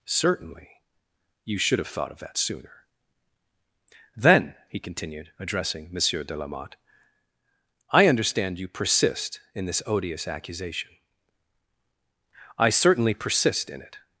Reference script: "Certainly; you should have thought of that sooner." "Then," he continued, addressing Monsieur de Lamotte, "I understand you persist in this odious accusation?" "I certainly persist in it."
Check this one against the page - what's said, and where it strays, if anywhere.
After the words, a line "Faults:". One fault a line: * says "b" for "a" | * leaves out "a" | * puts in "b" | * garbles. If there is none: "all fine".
"Certainly; you should have thought of that sooner." "Then," he continued, addressing Monsieur de Lamotte, "I understand you persist in this odious accusation?" "I certainly persist in it."
Faults:
all fine